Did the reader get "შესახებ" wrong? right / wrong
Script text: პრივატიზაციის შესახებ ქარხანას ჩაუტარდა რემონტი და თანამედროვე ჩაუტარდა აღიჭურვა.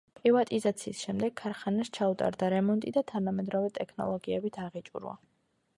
wrong